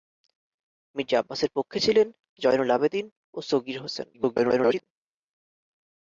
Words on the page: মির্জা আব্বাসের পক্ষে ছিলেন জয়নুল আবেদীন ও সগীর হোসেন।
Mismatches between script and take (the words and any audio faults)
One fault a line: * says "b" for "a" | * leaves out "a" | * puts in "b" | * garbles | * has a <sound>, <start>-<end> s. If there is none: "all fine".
* garbles